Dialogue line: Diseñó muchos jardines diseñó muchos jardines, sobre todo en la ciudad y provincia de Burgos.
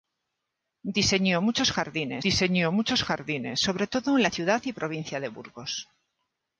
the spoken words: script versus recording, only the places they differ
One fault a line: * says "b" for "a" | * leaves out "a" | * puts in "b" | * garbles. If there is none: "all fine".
all fine